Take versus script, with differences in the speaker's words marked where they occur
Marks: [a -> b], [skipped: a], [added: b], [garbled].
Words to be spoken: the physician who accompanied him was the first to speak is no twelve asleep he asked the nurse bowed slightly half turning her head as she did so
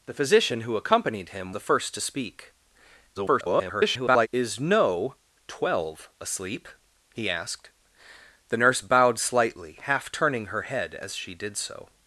the physician who accompanied him [skipped: was] the first to speak [garbled] is no twelve asleep he asked the nurse bowed slightly half turning her head as she did so